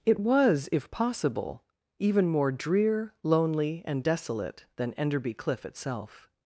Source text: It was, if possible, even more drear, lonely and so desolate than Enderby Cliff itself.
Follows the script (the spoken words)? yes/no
no